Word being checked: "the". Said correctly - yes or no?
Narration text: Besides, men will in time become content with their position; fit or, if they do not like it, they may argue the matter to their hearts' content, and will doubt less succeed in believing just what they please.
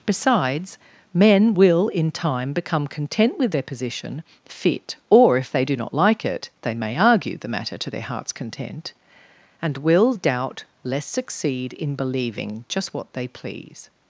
yes